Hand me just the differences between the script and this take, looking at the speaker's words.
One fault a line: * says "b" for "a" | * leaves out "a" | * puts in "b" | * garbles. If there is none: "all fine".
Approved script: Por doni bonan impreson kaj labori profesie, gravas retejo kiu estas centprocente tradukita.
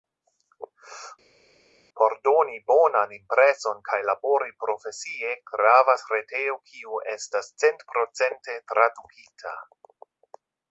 all fine